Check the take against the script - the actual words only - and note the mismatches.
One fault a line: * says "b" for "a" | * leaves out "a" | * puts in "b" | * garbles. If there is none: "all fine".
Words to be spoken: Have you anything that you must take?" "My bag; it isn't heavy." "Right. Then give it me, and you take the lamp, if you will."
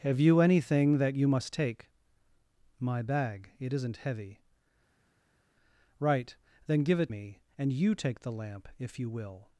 all fine